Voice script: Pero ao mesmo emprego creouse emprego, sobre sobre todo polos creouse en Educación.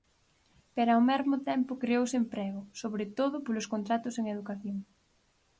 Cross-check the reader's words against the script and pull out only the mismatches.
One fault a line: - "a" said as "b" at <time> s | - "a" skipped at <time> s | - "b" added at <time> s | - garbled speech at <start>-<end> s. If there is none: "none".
- "emprego" said as "tempo" at 1.5 s
- "sobre" skipped at 3.0 s
- "creouse" said as "contratos" at 3.7 s